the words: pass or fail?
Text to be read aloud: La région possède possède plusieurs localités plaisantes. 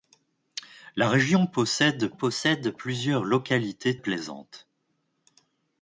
pass